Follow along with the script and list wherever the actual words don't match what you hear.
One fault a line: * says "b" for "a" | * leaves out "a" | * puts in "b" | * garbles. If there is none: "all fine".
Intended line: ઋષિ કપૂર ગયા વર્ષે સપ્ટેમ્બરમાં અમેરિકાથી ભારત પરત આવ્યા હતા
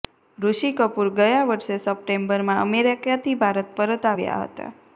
all fine